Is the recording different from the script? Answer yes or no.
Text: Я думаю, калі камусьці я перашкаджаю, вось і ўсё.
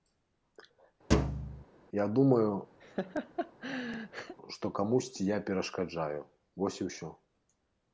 yes